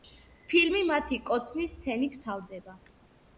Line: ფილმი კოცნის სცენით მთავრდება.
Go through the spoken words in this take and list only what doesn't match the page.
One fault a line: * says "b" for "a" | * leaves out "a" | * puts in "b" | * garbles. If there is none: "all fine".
* puts in "მათი"